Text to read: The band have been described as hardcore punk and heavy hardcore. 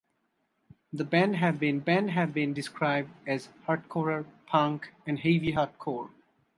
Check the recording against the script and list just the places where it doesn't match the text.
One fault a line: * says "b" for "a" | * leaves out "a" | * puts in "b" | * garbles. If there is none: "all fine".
* puts in "band have been"